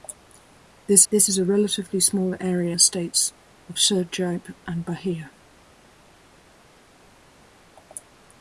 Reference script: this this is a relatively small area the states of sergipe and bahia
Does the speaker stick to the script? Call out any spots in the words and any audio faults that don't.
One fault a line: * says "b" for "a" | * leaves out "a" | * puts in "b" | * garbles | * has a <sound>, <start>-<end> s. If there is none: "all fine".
all fine